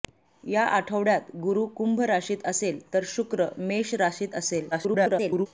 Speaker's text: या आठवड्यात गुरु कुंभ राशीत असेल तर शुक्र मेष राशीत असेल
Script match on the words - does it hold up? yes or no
no